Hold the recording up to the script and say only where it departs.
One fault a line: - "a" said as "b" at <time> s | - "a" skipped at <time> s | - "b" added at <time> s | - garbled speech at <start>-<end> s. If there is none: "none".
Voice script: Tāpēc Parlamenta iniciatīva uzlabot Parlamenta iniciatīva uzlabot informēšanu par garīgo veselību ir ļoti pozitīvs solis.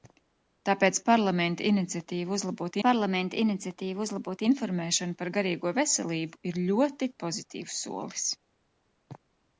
none